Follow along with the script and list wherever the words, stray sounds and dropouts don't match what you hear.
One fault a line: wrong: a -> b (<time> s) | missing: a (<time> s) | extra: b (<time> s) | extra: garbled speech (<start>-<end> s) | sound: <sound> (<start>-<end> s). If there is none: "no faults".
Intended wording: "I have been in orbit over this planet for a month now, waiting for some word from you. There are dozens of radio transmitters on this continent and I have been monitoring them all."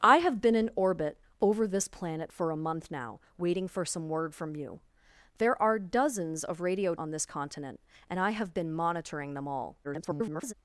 missing: transmitters (7.0 s)
extra: garbled speech (9.8-10.5 s)